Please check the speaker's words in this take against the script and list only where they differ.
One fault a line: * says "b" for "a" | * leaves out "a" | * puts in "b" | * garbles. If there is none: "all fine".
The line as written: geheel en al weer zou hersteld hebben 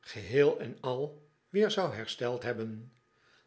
all fine